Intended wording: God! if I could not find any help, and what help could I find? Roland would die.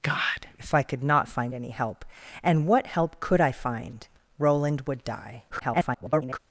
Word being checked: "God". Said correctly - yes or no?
yes